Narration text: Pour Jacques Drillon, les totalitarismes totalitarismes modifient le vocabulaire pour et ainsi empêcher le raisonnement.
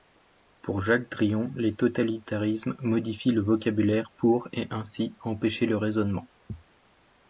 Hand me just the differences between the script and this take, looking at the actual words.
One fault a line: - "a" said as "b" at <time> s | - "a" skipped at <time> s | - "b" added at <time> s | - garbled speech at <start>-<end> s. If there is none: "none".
- "totalitarismes" skipped at 2.8 s